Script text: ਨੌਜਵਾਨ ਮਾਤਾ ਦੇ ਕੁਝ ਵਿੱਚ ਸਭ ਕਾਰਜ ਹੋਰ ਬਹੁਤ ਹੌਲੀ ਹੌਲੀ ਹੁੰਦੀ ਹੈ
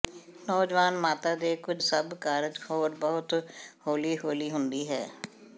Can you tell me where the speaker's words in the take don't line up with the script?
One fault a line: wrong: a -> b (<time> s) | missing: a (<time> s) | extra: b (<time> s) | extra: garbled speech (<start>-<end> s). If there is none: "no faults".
missing: ਵਿੱਚ (1.8 s)